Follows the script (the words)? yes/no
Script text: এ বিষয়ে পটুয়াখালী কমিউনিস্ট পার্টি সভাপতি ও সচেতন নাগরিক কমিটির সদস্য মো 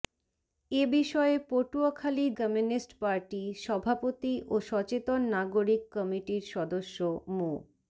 yes